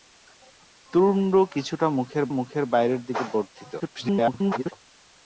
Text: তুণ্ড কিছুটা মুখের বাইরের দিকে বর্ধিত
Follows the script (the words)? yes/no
no